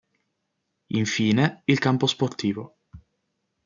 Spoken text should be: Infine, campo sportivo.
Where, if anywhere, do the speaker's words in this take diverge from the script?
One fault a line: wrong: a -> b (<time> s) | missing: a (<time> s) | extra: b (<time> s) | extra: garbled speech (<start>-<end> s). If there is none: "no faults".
extra: il (1.6 s)